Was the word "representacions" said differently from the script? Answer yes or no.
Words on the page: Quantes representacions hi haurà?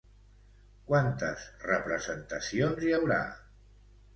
no